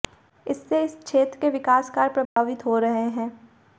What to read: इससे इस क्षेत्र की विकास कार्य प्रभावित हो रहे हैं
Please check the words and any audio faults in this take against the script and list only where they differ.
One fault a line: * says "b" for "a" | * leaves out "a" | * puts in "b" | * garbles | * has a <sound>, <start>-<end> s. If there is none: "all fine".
* says "के" for "की"
* has a dropout, 2.3-2.4 s